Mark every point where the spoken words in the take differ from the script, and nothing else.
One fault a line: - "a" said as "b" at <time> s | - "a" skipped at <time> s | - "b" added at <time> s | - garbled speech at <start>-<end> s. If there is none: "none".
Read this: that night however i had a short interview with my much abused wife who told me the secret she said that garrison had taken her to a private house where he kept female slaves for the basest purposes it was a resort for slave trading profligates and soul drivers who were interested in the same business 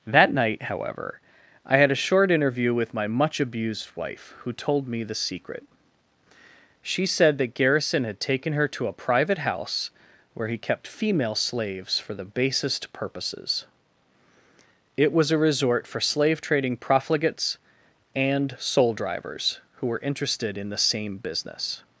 none